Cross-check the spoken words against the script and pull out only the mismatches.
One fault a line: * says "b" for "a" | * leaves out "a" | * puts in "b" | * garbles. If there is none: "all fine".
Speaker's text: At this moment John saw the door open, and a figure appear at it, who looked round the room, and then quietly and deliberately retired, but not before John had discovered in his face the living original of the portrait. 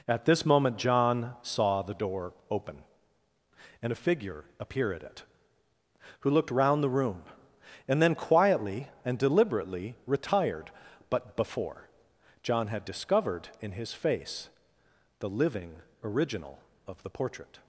* leaves out "not"